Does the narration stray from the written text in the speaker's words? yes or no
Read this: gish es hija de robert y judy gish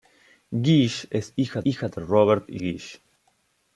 yes